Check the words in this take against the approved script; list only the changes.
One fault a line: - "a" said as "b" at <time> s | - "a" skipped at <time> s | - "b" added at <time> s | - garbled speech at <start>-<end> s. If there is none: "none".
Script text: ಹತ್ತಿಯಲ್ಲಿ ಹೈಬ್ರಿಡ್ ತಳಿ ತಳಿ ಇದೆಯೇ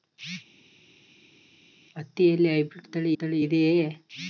none